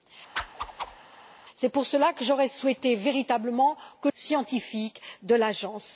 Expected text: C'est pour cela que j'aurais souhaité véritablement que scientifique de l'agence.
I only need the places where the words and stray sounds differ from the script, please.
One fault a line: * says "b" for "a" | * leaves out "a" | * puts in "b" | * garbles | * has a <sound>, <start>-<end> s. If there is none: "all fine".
* has a whoosh, 0.4-1.0 s